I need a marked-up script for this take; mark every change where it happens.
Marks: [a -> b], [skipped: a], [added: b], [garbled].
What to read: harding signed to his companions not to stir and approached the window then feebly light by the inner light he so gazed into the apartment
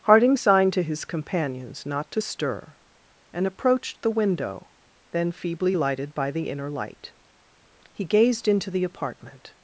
harding signed to his companions not to stir and approached the window then feebly [light -> lighted] by the inner light he [skipped: so] gazed into the apartment